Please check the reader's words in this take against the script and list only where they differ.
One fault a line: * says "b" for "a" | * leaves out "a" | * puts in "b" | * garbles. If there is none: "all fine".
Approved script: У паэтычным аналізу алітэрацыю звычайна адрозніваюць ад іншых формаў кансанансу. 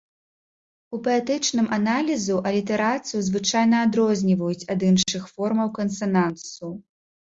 all fine